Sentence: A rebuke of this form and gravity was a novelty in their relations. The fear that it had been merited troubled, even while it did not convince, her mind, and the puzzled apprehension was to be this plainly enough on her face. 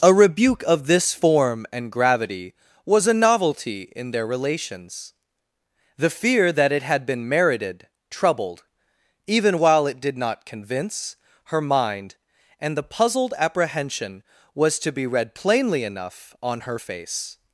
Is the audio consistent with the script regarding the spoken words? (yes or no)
no